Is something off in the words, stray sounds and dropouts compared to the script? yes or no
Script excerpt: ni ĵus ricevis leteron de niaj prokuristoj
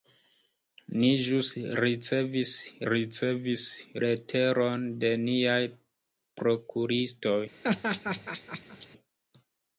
yes